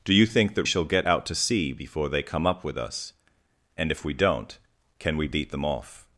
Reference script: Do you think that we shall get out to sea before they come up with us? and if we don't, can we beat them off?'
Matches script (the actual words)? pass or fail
fail